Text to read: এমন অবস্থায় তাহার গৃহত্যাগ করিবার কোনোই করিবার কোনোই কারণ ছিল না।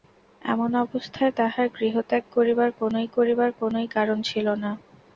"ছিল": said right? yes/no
yes